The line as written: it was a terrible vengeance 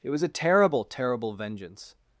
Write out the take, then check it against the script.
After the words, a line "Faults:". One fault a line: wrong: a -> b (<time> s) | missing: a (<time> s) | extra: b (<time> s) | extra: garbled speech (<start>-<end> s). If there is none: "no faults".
it was a terrible terrible vengeance
Faults:
extra: terrible (0.8 s)